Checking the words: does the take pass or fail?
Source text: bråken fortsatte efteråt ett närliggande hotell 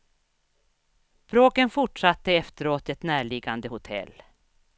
pass